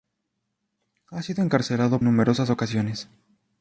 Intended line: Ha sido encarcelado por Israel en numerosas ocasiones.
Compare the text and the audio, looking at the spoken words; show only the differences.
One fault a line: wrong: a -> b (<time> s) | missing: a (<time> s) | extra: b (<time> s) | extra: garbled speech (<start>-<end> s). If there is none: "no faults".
missing: por Israel en (2.0 s)